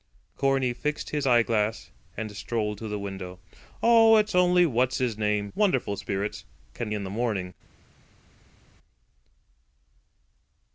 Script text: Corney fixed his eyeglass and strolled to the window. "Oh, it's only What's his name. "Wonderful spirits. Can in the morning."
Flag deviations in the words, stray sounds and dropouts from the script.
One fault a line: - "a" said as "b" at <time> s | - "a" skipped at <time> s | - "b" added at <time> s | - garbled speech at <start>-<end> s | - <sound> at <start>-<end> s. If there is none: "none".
none